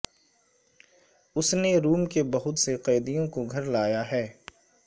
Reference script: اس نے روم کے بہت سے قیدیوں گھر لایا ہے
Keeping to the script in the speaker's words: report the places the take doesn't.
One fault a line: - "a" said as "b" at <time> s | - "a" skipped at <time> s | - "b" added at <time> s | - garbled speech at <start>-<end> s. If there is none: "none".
- "کو" added at 3.3 s